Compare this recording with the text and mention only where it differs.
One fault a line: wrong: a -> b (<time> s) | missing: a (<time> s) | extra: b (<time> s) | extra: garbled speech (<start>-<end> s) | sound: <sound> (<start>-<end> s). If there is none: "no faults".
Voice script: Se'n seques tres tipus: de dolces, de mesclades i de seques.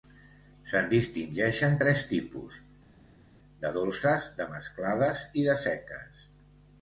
wrong: seques -> distingeixen (0.9 s)